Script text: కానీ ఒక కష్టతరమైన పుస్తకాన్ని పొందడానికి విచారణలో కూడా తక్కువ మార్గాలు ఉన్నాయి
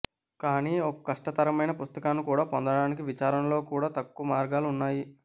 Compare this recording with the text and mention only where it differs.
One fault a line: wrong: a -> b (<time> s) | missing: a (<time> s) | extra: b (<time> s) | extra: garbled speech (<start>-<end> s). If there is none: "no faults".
extra: కూడా (2.2 s)